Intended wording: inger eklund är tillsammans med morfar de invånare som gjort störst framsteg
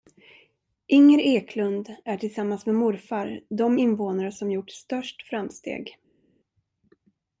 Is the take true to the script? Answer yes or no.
yes